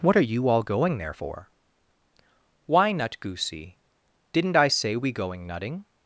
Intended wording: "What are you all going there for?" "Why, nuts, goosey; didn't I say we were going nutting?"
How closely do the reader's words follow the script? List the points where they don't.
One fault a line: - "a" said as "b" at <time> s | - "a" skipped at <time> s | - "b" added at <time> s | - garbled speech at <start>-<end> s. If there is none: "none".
- "nuts" said as "nut" at 2.9 s
- "were" skipped at 5.1 s